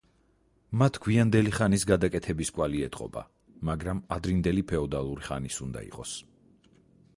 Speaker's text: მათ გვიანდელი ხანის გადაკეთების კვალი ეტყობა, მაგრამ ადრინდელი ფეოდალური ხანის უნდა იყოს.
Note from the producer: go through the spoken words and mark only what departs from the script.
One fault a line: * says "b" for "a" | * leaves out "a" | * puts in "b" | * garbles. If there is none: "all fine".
all fine